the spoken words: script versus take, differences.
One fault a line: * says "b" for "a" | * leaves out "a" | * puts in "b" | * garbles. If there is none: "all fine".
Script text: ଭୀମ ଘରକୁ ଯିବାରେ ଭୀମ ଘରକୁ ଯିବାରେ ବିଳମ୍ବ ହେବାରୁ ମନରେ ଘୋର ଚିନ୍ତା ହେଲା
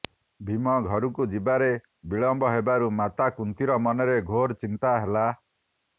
* says "ବିଳମ୍ବ ହେବାରୁ ମାତା କୁନ୍ତୀର" for "ଭୀମ ଘରକୁ ଯିବାରେ ବିଳମ୍ବ ହେବାରୁ"